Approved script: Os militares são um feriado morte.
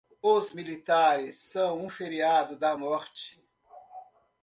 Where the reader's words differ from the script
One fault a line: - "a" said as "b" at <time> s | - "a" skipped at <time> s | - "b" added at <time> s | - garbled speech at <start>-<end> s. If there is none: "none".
- "da" added at 2.6 s